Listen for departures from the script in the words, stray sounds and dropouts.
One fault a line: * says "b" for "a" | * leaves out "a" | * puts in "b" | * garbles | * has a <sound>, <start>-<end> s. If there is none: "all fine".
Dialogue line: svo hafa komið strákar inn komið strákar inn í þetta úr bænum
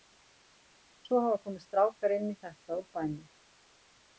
* leaves out "komið strákar inn"